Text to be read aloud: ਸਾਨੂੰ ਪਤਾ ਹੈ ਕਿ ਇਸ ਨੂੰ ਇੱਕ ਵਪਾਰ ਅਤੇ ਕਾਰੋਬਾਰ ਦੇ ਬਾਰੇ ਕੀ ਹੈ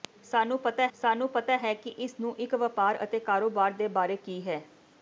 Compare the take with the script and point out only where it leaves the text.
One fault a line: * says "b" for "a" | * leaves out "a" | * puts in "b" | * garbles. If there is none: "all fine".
* puts in "ਸਾਨੂੰ ਪਤਾ"